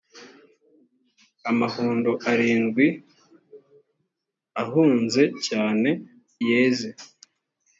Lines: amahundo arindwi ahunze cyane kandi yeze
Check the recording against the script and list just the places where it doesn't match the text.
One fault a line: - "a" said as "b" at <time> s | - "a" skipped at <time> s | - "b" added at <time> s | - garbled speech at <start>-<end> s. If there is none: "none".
- "kandi" skipped at 5.9 s